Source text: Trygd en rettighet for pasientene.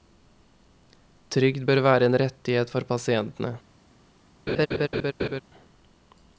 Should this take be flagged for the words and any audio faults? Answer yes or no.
yes